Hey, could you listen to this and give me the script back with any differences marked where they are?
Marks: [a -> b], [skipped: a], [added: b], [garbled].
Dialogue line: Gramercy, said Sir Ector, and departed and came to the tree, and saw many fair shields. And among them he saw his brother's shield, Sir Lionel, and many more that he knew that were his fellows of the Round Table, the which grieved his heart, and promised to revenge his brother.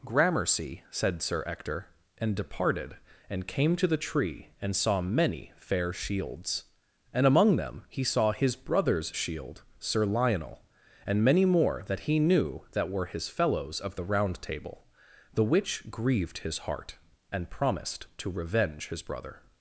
Gramercy, said Sir Ector, and departed and came to the tree, and saw many fair shields. And among them he saw his brother's shield, Sir Lionel, and many more that he knew that were his fellows of the Round Table, the which grieved his heart, and promised to revenge his brother.